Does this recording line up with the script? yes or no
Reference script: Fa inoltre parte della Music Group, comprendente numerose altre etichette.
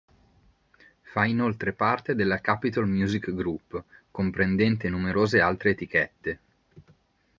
no